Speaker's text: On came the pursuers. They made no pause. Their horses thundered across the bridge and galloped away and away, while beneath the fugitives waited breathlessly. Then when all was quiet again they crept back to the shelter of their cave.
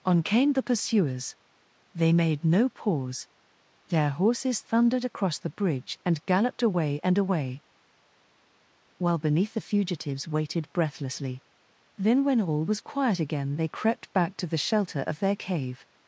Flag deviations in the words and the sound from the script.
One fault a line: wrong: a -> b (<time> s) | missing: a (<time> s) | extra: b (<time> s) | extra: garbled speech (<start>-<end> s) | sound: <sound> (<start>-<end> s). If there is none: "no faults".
no faults